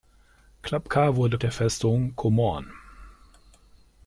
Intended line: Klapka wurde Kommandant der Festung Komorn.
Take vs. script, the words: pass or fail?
fail